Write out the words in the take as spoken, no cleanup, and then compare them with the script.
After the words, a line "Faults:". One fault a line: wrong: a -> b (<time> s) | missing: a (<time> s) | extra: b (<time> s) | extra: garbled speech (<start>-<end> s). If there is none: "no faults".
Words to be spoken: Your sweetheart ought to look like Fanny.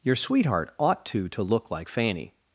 Your sweetheart ought to to look like Fanny.
Faults:
extra: to (1.3 s)